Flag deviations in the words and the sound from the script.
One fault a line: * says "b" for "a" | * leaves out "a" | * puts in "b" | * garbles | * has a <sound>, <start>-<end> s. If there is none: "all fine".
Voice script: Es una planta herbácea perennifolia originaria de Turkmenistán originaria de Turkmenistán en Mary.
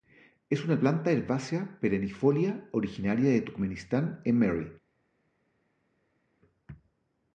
* leaves out "originaria de Turkmenistán"